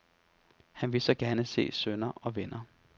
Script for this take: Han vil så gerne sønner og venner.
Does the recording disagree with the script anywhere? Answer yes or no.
yes